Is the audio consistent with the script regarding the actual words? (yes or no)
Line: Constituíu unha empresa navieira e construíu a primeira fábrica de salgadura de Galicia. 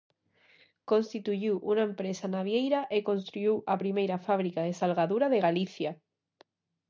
yes